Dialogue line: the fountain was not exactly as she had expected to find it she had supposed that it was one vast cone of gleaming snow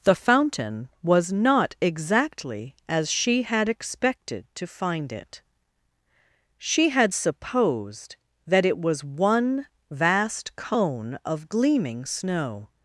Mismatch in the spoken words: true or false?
false